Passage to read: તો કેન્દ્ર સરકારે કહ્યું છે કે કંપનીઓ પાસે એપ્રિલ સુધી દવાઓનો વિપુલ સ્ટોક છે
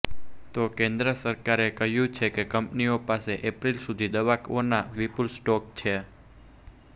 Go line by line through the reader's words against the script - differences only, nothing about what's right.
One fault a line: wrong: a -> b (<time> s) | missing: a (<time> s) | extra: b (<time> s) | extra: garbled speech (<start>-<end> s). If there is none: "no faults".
no faults